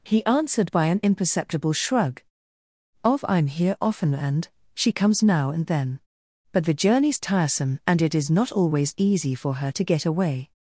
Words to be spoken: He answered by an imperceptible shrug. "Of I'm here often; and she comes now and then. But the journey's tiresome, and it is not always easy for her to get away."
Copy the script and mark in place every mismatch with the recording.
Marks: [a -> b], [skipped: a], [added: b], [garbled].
He answered by an imperceptible shrug. "Of I'm here often; and she comes now and then. But the journey's tiresome, and it is not always easy for her to get away."